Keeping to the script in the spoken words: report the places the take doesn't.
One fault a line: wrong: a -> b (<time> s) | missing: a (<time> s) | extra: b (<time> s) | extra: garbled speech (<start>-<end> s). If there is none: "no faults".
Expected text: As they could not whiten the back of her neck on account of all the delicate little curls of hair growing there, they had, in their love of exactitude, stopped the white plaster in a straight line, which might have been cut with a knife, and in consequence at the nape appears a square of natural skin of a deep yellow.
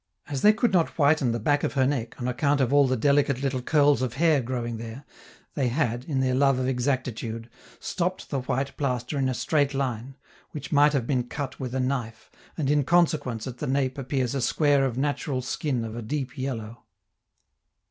no faults